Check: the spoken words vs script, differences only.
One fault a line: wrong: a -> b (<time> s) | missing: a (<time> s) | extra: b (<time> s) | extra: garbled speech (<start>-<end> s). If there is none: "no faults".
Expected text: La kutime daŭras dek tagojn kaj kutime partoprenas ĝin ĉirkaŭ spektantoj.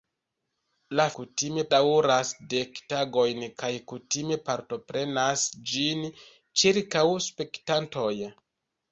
no faults